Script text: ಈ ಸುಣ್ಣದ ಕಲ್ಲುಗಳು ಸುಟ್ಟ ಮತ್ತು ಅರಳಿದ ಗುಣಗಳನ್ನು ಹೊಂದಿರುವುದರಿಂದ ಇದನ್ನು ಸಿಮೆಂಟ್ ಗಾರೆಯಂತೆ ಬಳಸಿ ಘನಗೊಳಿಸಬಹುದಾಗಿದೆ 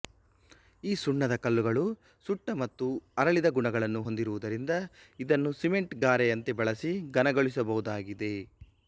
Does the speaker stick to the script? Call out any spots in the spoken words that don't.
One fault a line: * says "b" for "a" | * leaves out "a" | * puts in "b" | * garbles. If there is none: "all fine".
all fine